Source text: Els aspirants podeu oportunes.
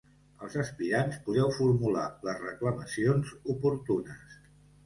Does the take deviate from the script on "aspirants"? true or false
false